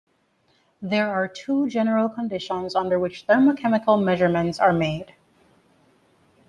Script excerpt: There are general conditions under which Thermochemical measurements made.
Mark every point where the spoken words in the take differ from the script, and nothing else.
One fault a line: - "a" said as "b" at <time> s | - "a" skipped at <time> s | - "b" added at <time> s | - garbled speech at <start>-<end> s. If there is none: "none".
- "two" added at 1.3 s
- "are" added at 4.6 s